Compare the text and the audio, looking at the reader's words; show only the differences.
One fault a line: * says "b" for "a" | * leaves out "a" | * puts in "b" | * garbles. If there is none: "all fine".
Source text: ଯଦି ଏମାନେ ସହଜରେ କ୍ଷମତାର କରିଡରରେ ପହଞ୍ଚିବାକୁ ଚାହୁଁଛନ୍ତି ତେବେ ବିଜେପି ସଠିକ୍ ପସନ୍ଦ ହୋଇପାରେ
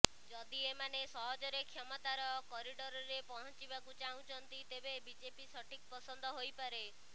all fine